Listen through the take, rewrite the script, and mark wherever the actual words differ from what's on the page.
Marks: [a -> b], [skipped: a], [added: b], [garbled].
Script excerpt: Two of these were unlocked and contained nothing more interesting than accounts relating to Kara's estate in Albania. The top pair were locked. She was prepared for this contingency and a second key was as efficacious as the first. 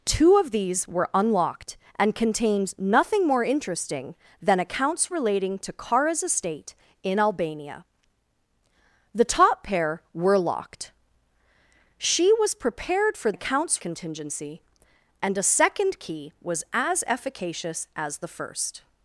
Two of these were unlocked and contained nothing more interesting than accounts relating to Kara's estate in Albania. The top pair were locked. She was prepared for [this -> accounts] contingency and a second key was as efficacious as the first.